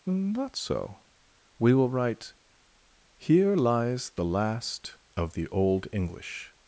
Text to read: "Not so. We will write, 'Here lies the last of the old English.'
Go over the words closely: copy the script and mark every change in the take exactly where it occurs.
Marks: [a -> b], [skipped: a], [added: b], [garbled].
"Not so. We will write, 'Here lies the last of the old English.'